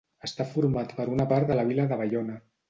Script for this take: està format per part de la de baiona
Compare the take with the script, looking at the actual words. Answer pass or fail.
fail